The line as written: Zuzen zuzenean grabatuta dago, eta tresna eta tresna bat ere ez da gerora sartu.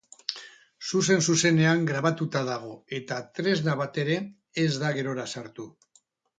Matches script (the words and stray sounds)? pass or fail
fail